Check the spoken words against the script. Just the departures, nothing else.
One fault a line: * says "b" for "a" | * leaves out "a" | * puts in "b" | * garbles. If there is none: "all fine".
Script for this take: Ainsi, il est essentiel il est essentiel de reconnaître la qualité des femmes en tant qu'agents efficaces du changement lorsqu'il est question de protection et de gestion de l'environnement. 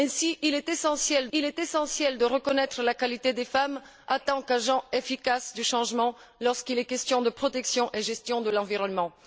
all fine